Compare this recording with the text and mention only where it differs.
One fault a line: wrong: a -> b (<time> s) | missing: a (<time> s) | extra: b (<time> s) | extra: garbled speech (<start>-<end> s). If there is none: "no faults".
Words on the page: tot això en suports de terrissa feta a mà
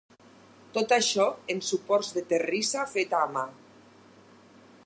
no faults